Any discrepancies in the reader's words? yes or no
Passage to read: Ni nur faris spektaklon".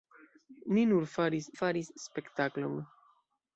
yes